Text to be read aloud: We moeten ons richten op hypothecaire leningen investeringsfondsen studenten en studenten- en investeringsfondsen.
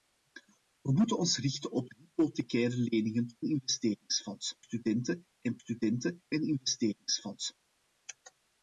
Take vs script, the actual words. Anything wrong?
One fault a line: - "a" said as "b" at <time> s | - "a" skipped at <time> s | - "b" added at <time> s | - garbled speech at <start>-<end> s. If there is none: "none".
none